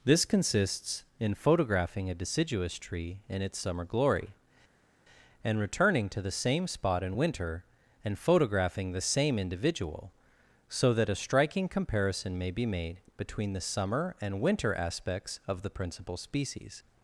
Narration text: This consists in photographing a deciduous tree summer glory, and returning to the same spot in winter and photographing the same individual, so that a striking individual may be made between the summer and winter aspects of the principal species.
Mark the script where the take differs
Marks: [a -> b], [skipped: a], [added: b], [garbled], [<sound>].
This consists in photographing a deciduous tree [added: in its] summer glory, and returning to the same spot in winter and photographing the same individual, so that a striking [individual -> comparison] may be made between the summer and winter aspects of the principal species.